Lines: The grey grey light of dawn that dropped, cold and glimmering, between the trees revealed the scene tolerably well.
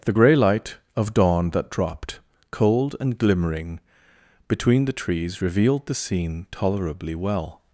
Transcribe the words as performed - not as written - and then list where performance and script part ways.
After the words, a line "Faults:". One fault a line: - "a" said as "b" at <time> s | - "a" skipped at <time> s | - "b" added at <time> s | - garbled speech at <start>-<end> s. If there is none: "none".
The grey light of dawn that dropped, cold and glimmering, between the trees revealed the scene tolerably well.
Faults:
- "grey" skipped at 0.4 s